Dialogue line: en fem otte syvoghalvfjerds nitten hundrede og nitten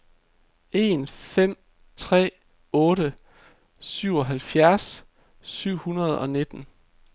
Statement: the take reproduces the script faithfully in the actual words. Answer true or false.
false